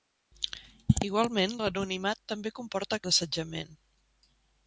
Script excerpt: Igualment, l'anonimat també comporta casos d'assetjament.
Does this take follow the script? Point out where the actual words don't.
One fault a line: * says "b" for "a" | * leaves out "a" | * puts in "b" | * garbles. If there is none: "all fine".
* leaves out "casos"